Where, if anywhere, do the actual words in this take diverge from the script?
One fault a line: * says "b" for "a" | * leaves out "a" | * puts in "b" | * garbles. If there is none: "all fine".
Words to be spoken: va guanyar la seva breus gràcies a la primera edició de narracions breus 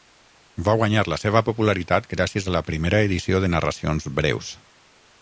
* says "popularitat" for "breus"